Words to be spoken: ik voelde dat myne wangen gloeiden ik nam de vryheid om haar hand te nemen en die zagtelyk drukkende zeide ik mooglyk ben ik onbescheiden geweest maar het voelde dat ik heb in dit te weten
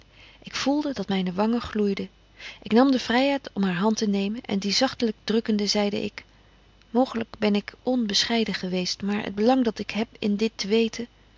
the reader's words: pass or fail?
fail